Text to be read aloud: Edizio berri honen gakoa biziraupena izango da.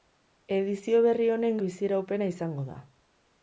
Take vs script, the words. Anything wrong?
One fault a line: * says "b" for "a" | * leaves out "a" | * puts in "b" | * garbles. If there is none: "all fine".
* leaves out "gakoa"